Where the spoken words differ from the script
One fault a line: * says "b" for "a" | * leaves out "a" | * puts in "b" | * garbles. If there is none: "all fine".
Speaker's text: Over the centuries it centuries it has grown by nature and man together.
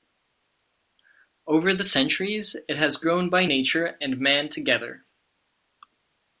* leaves out "centuries it"